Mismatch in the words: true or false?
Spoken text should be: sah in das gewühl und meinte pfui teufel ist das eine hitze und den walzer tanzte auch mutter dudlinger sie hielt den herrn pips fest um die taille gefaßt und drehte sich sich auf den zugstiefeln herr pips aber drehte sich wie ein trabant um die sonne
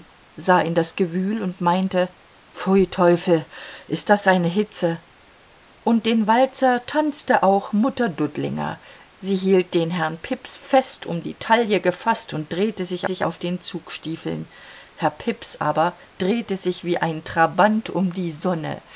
false